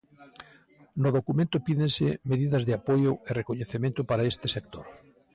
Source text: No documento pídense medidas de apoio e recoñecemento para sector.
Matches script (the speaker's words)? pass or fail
fail